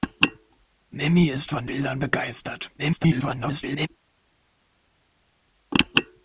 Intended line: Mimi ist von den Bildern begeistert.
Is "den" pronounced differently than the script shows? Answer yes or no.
yes